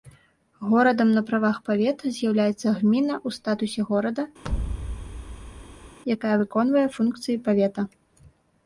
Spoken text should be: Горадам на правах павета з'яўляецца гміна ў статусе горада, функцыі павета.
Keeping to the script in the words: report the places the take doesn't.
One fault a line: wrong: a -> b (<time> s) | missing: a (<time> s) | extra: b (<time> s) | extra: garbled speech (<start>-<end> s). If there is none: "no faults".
extra: якая выконвае (6.2 s)